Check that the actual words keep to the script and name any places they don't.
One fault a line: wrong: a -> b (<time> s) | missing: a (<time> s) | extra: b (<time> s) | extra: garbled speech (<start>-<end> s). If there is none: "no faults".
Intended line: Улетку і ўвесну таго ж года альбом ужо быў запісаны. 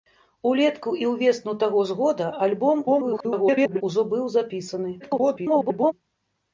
extra: garbled speech (2.8-3.8 s)
extra: garbled speech (5.0-5.9 s)